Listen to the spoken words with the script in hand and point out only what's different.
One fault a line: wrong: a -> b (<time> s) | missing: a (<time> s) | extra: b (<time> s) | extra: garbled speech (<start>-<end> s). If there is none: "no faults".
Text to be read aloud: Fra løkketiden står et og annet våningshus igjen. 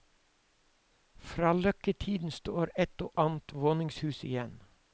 no faults